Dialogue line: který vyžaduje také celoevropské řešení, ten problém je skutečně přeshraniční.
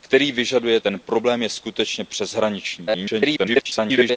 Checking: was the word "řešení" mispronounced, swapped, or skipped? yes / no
yes